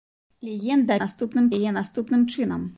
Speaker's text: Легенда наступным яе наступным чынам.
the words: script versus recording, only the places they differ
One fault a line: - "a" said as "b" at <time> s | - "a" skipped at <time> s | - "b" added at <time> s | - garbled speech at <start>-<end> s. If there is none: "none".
none